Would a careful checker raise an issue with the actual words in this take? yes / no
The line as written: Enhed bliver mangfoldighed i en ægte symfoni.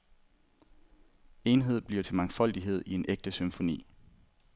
yes